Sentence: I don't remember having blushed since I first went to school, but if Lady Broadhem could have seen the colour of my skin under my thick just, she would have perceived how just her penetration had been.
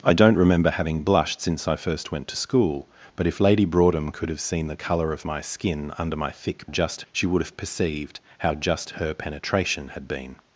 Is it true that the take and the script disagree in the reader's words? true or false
false